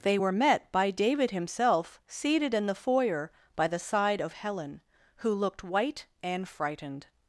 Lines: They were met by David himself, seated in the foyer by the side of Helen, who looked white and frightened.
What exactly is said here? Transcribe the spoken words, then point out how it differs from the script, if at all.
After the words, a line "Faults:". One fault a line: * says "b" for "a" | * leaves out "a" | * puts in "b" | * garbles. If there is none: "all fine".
They were met by David himself, seated in the foyer by the side of Helen, who looked white and frightened.
Faults:
all fine